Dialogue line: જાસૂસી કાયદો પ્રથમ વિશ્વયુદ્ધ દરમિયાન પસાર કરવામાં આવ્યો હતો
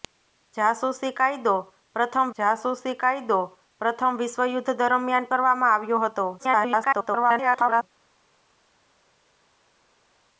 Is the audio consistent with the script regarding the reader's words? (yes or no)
no